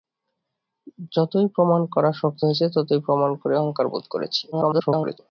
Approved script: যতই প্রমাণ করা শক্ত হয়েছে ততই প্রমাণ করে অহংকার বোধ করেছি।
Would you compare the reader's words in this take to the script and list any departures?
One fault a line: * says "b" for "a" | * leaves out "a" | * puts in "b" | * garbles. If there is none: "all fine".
* garbles